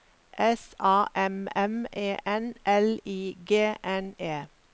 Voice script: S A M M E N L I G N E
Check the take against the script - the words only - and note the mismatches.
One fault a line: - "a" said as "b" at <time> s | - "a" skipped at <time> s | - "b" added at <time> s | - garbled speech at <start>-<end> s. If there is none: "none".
none